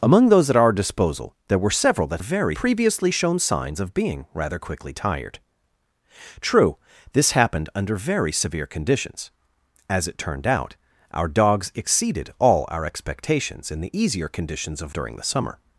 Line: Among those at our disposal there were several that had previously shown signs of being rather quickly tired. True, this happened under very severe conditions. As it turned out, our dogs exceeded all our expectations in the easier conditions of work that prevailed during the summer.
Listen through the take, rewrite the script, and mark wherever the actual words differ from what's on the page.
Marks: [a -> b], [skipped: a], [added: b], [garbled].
Among those at our disposal there were several that [had -> very] previously shown signs of being rather quickly tired. True, this happened under very severe conditions. As it turned out, our dogs exceeded all our expectations in the easier conditions of [skipped: work that prevailed] during the summer.